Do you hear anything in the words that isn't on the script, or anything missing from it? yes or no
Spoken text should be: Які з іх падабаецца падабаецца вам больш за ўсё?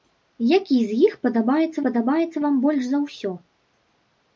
no